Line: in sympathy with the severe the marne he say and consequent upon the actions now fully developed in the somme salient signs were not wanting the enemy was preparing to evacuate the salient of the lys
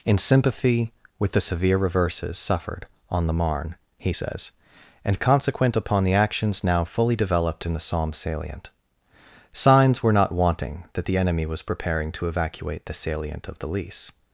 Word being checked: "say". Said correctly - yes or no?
no